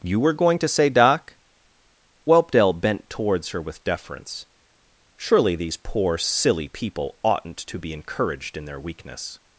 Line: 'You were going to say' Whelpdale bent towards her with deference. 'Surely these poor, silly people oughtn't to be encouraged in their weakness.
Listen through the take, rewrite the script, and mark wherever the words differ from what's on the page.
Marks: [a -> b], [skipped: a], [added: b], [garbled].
'You were going to say' [added: doc] Whelpdale bent towards her with deference. 'Surely these poor, silly people oughtn't to be encouraged in their weakness.